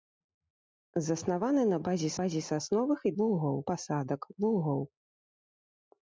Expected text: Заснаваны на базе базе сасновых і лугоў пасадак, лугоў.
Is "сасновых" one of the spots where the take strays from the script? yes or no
no